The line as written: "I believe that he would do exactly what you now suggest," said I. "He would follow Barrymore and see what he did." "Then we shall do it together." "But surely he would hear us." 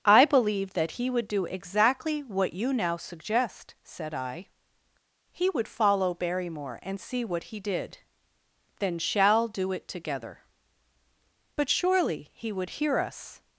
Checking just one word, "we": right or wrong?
wrong